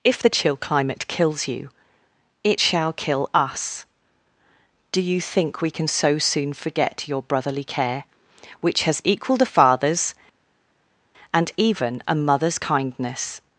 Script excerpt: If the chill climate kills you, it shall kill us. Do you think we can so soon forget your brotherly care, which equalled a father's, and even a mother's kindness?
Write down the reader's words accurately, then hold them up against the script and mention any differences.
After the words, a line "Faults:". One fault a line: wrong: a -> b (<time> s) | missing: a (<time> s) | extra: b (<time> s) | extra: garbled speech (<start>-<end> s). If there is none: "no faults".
If the chill climate kills you, it shall kill us. Do you think we can so soon forget your brotherly care, which has equalled a father's, and even a mother's kindness?
Faults:
extra: has (8.8 s)